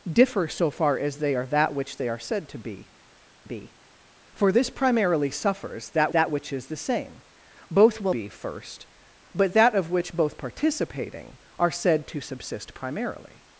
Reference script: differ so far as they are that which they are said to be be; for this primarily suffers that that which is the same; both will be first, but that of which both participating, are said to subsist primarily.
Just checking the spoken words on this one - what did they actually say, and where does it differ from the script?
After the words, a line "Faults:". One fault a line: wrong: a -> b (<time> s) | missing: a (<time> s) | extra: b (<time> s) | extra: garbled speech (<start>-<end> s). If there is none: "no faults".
differ so far as they are that which they are said to be be; for this primarily suffers that that which is the same; both will be first, but that of which both participating, are said to subsist primarily.
Faults:
no faults